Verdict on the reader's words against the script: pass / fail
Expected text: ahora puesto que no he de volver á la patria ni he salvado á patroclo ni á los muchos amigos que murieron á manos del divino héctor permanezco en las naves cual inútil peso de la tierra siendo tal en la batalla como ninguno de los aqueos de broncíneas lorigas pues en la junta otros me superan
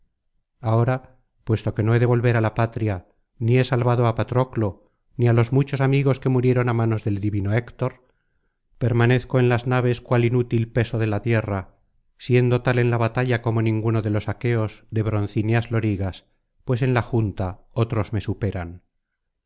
pass